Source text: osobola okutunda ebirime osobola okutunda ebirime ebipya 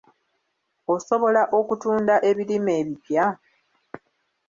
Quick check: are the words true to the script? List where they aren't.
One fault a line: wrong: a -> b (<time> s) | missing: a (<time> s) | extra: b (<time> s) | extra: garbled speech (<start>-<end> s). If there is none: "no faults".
missing: osobola okutunda ebirime (2.7 s)